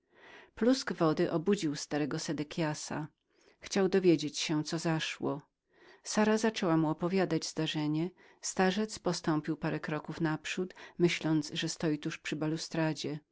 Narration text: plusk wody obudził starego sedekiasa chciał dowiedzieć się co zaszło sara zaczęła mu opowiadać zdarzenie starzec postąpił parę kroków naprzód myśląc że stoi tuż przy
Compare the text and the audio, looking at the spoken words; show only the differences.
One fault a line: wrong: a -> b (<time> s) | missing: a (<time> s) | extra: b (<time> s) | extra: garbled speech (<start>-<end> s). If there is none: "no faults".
no faults